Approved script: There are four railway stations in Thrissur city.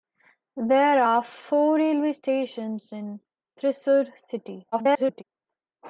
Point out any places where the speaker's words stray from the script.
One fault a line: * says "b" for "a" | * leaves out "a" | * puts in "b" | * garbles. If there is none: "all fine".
* garbles